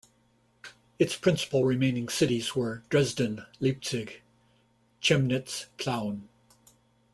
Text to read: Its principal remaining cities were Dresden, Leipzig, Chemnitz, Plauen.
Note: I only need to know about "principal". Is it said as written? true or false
true